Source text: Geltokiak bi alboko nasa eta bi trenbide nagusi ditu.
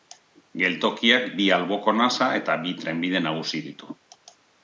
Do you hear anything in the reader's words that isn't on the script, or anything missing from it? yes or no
no